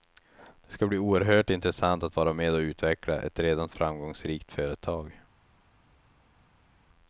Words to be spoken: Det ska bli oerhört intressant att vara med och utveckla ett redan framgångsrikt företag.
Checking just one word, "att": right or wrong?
right